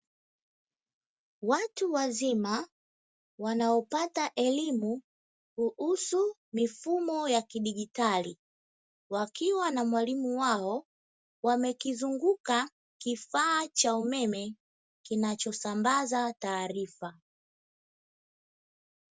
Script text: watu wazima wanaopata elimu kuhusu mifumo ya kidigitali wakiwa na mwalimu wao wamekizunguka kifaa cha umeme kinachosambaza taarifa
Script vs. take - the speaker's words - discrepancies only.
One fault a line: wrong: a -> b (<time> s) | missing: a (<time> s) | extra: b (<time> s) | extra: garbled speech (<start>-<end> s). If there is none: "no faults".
no faults